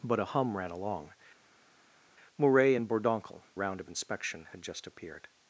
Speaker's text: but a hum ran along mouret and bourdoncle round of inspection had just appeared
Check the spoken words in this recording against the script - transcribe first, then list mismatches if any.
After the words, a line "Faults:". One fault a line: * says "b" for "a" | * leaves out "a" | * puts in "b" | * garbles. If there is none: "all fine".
but a hum ran along mouret and bourdoncle round of inspection had just appeared
Faults:
all fine